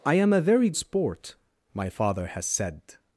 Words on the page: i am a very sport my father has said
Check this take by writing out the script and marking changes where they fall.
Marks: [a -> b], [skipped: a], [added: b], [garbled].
i am a very sport my father has said